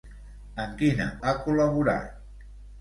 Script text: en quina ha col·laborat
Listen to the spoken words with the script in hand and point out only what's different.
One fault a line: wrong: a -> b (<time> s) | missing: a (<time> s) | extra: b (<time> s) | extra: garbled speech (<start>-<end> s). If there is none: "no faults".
no faults